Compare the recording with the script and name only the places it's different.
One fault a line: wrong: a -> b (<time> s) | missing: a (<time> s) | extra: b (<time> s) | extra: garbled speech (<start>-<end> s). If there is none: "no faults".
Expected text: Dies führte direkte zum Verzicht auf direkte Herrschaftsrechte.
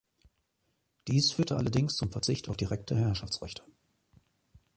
wrong: direkte -> allerdings (1.6 s)